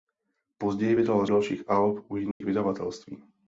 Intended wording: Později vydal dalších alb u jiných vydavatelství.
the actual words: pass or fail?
pass